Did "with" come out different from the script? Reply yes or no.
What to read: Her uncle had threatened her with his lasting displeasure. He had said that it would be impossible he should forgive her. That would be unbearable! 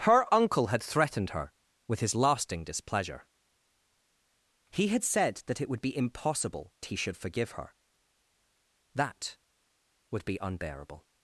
no